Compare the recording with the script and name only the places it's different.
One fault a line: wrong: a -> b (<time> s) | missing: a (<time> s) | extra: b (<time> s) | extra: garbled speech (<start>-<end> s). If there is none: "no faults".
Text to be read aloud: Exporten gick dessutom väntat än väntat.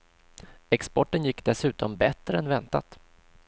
wrong: väntat -> bättre (1.9 s)